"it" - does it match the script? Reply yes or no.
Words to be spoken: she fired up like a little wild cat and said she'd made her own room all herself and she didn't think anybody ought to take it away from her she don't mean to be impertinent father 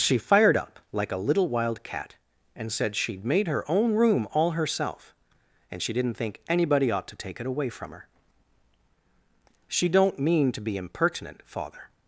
yes